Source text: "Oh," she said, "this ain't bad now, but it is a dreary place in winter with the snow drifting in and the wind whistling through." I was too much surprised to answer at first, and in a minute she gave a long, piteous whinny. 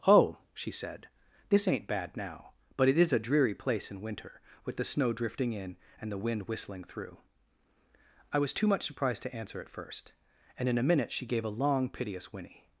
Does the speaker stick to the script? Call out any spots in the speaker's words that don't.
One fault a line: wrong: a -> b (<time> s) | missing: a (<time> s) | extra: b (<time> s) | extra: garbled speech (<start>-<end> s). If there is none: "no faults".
no faults